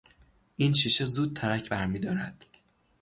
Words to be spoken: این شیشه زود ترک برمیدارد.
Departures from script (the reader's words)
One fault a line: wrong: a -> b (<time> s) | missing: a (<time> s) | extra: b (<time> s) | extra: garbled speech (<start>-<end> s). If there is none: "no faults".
no faults